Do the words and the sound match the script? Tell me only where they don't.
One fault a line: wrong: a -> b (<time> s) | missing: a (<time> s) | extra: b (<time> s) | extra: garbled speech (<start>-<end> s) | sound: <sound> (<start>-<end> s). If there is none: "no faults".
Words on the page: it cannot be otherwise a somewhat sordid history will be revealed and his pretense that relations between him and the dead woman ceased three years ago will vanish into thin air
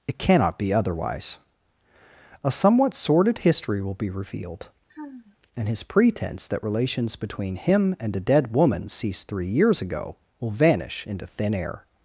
sound: sigh (4.9-5.4 s)
wrong: the -> a (8.2 s)